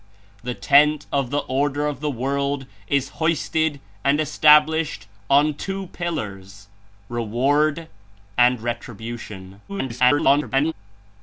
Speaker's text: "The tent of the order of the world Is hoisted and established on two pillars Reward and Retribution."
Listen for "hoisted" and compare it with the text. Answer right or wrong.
right